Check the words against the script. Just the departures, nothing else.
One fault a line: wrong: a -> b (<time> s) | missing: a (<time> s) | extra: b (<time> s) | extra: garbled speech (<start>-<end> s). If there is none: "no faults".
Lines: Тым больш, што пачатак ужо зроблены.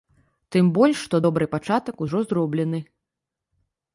extra: добры (1.2 s)